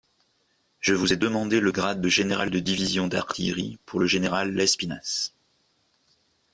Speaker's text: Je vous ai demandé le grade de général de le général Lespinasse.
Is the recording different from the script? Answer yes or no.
yes